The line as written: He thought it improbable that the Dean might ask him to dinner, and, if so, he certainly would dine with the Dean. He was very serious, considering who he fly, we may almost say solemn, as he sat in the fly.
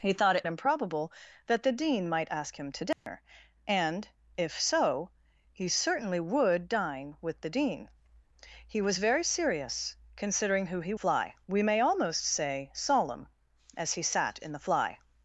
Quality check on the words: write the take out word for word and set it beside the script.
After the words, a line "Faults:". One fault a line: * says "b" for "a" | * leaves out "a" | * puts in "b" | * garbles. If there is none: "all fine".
He thought it improbable that the Dean might ask him to dinner, and, if so, he certainly would dine with the Dean. He was very serious, considering who he fly, we may almost say solemn, as he sat in the fly.
Faults:
all fine